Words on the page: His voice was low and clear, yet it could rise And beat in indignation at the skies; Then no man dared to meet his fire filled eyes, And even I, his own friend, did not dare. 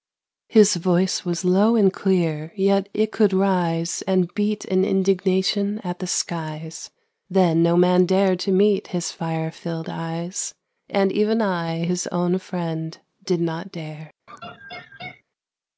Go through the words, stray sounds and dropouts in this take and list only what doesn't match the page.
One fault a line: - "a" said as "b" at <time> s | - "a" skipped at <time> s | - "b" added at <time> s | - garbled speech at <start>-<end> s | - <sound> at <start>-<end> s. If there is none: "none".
- laugh at 14.3-15.2 s